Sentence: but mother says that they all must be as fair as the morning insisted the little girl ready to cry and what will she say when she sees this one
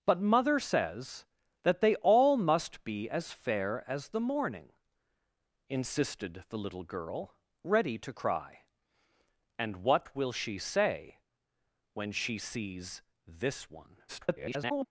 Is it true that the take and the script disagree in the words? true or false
true